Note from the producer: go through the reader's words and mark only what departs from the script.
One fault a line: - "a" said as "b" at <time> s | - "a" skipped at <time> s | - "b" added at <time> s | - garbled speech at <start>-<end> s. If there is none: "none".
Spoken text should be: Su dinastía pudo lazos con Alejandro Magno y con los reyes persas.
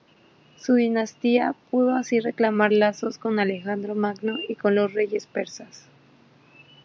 - "así reclamar" added at 1.9 s